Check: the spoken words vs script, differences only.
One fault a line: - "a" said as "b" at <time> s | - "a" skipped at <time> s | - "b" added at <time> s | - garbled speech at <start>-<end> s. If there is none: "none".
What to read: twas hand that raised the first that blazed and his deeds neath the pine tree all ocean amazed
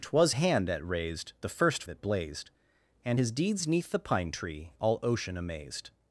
none